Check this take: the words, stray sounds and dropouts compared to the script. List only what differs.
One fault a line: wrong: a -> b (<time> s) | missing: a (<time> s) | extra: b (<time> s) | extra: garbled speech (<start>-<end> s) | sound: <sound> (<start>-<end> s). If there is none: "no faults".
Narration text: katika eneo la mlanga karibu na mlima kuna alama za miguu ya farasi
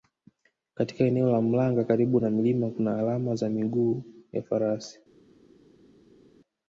no faults